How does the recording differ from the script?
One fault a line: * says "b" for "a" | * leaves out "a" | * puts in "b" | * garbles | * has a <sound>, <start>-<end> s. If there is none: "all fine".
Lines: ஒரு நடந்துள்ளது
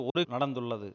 * has a dropout, 0.1-0.2 s